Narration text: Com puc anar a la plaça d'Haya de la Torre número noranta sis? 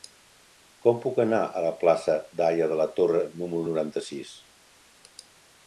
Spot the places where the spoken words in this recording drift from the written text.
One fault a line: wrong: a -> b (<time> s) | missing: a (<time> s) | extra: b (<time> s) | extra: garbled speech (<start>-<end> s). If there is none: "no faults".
no faults